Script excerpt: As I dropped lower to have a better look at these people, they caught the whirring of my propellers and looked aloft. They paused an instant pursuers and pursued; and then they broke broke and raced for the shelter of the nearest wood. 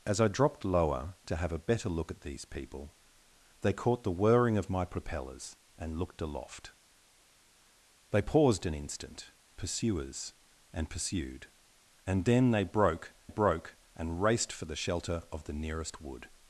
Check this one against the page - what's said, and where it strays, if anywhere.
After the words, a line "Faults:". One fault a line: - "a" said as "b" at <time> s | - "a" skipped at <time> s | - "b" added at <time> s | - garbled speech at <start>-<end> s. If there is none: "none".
As I dropped lower to have a better look at these people, they caught the whirring of my propellers and looked aloft. They paused an instant pursuers and pursued; and then they broke broke and raced for the shelter of the nearest wood.
Faults:
none